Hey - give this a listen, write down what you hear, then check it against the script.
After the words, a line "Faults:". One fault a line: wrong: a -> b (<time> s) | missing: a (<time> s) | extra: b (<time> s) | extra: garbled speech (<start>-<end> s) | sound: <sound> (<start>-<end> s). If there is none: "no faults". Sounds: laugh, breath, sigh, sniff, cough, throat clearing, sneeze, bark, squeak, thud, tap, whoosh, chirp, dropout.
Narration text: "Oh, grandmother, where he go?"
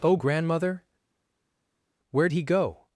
"Oh, grandmother, where he go?"
Faults:
no faults